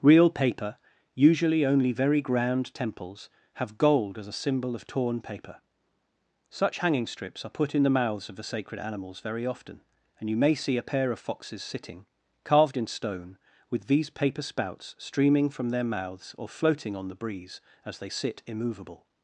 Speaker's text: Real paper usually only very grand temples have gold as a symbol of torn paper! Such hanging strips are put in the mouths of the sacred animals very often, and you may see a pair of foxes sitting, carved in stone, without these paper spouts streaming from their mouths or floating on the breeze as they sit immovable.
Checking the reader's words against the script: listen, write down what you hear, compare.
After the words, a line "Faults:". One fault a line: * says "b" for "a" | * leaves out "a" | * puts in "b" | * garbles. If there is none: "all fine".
Real paper usually only very grand temples have gold as a symbol of torn paper! Such hanging strips are put in the mouths of the sacred animals very often, and you may see a pair of foxes sitting, carved in stone, with these paper spouts streaming from their mouths or floating on the breeze as they sit immovable.
Faults:
* says "with" for "without"